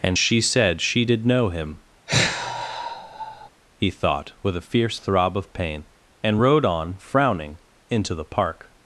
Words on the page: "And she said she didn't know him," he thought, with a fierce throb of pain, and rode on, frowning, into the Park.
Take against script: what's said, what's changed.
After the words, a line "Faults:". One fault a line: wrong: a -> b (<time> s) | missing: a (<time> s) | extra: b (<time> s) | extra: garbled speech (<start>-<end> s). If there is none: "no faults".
"And she said she did know him," he thought, with a fierce throb of pain, and rode on, frowning, into the Park.
Faults:
wrong: didn't -> did (1.0 s)